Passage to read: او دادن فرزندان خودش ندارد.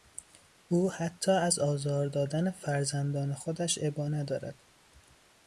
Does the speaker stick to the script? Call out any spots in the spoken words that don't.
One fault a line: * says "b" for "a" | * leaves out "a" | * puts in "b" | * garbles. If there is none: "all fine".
* puts in "حتی از آزار"
* puts in "ابا"